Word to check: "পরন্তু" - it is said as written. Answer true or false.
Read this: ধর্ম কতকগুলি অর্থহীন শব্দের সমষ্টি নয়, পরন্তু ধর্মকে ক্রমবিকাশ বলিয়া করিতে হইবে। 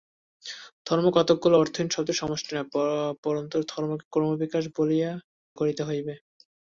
true